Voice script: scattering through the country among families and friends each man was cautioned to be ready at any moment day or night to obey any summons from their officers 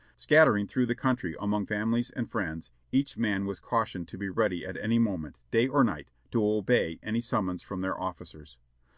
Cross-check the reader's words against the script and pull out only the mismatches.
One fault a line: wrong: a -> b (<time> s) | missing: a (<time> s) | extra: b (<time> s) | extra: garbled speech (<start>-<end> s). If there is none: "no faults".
no faults